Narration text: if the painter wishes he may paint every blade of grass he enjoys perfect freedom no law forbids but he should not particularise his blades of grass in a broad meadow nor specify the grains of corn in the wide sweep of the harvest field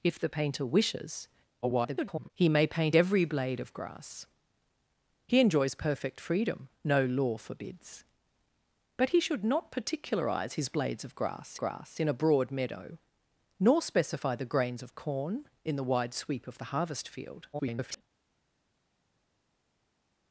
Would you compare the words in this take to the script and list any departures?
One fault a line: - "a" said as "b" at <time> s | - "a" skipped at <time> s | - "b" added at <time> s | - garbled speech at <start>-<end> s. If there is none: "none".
- garbled speech at 1.6-2.3 s
- "grass" added at 11.6 s
- garbled speech at 17.5-18.0 s